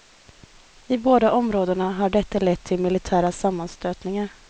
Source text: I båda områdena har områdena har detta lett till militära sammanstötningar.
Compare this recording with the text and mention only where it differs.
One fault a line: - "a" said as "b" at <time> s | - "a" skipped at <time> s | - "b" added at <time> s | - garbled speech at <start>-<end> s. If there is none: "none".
- "områdena har" skipped at 2.1 s